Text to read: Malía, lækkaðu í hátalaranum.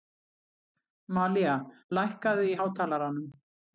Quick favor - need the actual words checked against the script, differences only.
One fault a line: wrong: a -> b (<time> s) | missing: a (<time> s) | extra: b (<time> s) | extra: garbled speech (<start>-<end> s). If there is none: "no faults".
no faults